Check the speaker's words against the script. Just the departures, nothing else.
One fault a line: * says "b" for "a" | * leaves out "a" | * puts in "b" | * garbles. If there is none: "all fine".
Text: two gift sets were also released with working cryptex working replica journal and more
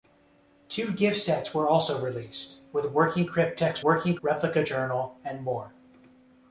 all fine